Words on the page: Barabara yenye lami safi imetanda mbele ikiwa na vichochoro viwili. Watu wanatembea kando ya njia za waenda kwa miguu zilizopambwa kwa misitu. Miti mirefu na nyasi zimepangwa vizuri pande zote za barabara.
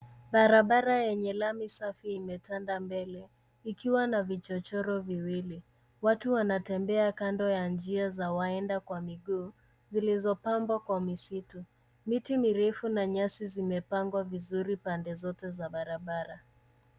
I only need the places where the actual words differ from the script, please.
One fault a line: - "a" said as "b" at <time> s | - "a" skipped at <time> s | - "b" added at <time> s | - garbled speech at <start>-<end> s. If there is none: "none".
none